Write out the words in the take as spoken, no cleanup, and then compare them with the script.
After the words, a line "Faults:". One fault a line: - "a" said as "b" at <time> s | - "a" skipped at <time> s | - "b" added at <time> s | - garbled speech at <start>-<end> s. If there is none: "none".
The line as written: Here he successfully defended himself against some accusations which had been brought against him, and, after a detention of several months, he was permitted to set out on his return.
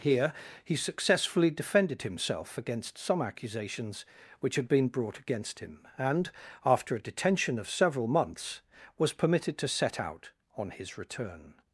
Here he successfully defended himself against some accusations which had been brought against him, and, after a detention of several months, was permitted to set out on his return.
Faults:
- "he" skipped at 8.6 s